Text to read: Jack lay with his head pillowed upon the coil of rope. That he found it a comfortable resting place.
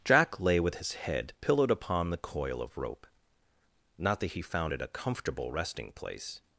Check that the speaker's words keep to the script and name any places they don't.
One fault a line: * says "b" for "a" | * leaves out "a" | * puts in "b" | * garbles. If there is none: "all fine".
* puts in "Not"